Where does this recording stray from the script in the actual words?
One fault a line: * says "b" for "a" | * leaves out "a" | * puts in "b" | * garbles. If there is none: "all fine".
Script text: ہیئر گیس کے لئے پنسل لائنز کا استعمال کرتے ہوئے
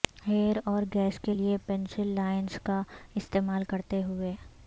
* puts in "اور"